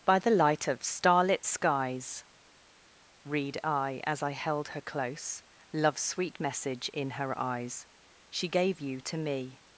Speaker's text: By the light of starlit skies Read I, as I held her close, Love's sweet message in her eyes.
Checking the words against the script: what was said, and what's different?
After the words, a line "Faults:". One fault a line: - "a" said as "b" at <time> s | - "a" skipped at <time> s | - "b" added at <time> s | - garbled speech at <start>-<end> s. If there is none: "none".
By the light of starlit skies Read I, as I held her close, Love's sweet message in her eyes. She gave you to me
Faults:
- "She gave you to me" added at 8.3 s